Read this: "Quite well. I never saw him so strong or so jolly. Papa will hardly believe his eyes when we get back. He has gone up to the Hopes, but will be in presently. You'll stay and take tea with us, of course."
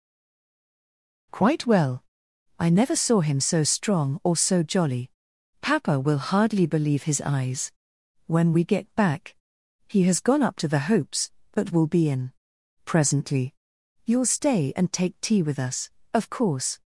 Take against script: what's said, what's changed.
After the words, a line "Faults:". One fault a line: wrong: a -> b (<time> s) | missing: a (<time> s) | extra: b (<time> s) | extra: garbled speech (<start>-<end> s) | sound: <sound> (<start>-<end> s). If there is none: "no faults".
"Quite well. I never saw him so strong or so jolly. Papa will hardly believe his eyes when we get back. He has gone up to the Hopes, but will be in presently. You'll stay and take tea with us, of course."
Faults:
no faults